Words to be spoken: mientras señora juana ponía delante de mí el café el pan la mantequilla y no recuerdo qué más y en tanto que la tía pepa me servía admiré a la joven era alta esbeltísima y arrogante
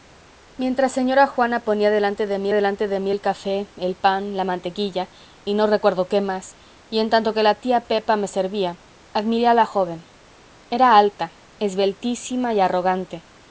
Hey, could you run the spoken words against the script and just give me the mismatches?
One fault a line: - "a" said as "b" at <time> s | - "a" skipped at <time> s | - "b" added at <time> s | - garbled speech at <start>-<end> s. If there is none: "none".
- "delante de mí" added at 2.5 s